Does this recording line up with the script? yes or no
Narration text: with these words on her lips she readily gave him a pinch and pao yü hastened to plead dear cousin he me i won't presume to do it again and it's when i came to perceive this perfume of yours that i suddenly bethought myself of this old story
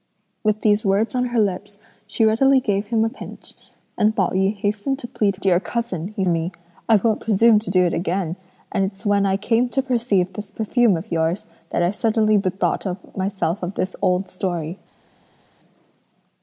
yes